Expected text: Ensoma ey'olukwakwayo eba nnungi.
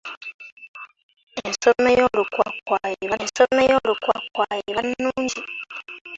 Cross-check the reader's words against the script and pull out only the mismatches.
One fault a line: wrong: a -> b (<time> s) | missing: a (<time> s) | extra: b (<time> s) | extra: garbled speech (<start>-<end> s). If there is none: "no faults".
extra: ensoma ey'olukwakwayo eba (3.2 s)